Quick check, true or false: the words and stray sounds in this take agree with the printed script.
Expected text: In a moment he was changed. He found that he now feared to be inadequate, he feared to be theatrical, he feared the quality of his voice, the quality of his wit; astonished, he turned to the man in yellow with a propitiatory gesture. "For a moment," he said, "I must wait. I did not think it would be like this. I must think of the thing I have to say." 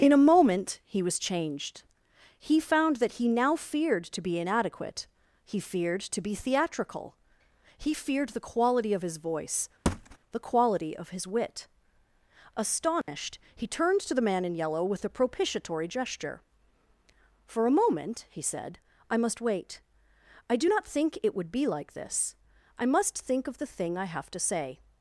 false